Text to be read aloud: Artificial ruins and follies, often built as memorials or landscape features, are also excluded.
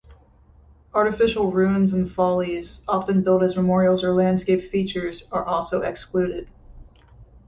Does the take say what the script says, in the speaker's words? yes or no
yes